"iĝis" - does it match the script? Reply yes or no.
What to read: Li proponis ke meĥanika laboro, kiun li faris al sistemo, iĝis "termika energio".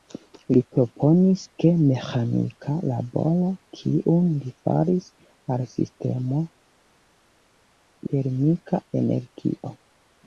no